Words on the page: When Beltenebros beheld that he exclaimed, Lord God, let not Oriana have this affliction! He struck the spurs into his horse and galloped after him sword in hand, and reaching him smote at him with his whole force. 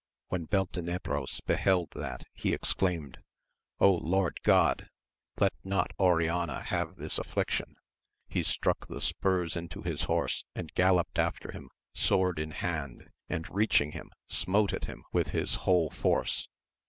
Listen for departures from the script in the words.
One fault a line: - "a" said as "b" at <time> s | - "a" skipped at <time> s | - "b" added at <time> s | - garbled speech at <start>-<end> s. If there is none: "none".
none